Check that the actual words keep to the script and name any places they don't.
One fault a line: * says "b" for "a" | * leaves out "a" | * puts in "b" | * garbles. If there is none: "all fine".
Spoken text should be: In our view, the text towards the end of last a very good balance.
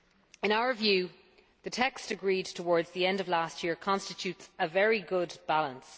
* puts in "agreed"
* puts in "year constitutes"